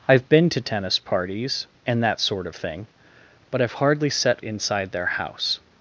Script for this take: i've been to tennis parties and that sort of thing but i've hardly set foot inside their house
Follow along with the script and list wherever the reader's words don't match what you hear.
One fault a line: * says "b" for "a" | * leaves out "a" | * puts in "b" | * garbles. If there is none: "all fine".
* leaves out "foot"